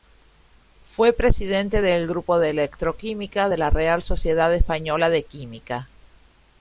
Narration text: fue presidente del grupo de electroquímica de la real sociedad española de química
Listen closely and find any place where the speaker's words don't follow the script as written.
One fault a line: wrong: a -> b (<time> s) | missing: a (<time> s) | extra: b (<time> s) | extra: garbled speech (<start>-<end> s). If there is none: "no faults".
no faults